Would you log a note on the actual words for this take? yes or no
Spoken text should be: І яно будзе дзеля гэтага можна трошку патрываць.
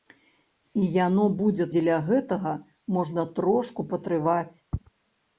no